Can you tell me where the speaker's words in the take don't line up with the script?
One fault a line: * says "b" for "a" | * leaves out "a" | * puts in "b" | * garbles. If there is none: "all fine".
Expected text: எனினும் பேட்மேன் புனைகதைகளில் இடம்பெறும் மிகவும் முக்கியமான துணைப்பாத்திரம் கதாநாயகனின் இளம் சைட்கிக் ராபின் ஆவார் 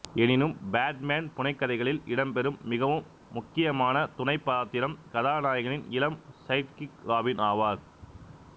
all fine